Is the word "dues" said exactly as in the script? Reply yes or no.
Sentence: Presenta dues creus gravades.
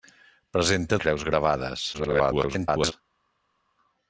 no